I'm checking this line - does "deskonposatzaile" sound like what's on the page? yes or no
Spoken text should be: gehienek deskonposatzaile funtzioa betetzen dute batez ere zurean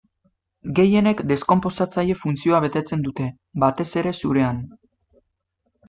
yes